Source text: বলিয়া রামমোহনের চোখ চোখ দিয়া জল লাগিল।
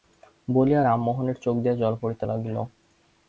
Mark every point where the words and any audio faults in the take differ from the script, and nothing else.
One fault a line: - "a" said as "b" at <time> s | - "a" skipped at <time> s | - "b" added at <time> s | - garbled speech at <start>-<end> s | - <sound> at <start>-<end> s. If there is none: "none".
- "চোখ" skipped at 1.6 s
- "পড়িতে" added at 2.0 s